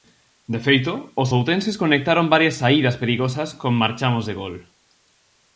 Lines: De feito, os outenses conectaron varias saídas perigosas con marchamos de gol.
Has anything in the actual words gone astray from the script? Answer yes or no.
no